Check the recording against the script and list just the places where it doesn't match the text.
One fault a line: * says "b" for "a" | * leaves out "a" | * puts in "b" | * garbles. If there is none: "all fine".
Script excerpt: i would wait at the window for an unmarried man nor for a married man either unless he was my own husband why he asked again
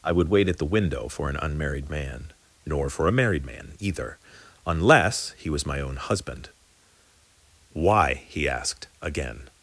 all fine